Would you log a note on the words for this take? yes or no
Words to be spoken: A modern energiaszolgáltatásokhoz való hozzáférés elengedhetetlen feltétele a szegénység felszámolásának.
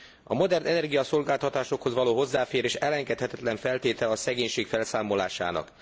no